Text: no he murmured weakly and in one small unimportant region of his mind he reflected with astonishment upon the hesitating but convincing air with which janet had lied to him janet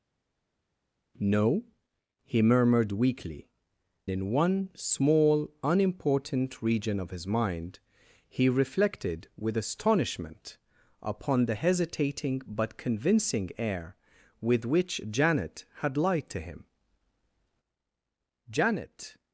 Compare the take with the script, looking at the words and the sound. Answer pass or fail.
fail